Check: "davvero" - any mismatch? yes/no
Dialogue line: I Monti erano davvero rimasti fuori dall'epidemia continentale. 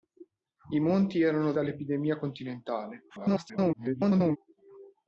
yes